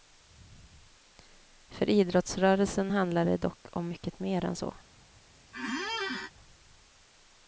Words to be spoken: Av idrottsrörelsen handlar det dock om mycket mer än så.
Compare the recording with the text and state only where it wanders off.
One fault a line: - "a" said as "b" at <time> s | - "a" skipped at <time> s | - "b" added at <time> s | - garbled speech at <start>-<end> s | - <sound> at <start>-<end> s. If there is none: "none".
- "Av" said as "För" at 1.7 s
- squeak at 5.5-6.3 s